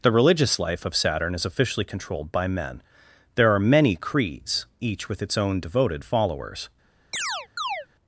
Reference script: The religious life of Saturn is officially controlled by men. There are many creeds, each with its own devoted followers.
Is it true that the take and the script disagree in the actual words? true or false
false